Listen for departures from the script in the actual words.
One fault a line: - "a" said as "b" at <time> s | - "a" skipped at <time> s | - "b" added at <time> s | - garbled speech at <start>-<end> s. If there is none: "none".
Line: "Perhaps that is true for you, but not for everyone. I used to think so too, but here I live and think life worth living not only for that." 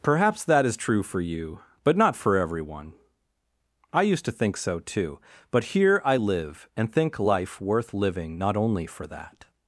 none